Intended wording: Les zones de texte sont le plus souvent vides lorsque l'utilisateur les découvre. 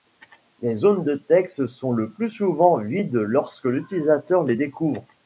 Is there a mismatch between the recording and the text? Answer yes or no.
no